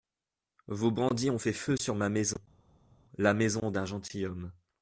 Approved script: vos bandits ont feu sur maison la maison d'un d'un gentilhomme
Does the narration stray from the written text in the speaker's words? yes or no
yes